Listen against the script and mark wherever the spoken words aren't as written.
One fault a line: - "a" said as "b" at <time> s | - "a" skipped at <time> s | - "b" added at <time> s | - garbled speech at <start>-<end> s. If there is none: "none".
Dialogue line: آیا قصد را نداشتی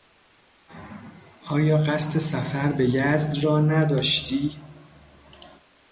- "سفر به یزد" added at 2.2 s